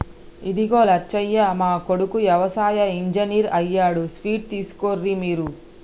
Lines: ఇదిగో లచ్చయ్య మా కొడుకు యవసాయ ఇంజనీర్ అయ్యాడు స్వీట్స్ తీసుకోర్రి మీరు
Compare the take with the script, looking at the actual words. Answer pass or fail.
pass